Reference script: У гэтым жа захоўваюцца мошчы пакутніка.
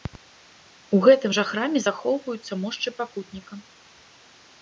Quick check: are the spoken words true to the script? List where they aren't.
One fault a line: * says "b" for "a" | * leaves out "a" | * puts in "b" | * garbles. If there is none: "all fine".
* puts in "храме"